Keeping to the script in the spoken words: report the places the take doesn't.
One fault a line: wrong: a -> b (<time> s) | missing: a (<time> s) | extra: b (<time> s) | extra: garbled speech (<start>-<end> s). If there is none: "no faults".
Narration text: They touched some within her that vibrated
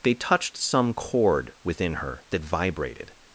extra: chord (0.9 s)